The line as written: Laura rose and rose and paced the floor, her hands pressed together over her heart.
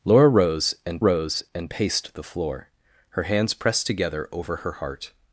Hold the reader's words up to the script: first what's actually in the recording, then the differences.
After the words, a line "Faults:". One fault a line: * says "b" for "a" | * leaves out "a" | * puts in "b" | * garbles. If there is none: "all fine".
Laura rose and rose and paced the floor, her hands pressed together over her heart.
Faults:
all fine